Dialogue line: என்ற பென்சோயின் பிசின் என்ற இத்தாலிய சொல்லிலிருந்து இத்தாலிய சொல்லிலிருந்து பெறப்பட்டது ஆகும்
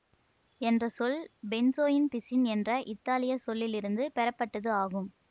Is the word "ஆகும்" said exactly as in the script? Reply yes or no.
yes